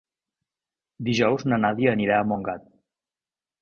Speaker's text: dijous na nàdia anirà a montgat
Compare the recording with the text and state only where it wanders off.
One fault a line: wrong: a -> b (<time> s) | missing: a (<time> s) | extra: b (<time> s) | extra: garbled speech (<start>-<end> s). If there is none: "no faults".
no faults